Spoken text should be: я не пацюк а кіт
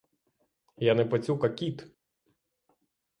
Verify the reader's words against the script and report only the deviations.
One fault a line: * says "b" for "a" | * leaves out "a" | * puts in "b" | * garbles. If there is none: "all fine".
all fine